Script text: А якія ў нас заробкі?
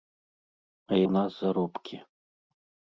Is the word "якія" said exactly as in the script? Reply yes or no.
no